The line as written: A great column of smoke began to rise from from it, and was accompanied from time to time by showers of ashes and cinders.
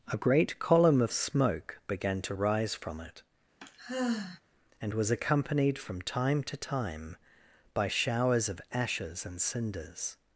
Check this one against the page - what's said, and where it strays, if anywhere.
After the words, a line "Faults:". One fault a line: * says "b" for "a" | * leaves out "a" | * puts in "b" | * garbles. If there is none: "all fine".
A great column of smoke began to rise from it, and was accompanied from time to time by showers of ashes and cinders.
Faults:
* leaves out "from"